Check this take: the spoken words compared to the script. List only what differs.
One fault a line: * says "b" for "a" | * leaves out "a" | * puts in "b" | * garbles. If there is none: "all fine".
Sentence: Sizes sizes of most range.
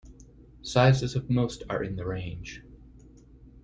* leaves out "sizes"
* puts in "are in the"